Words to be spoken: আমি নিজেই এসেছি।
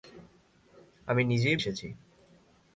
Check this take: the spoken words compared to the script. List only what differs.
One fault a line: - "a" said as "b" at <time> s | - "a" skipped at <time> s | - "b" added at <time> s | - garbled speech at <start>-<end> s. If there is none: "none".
none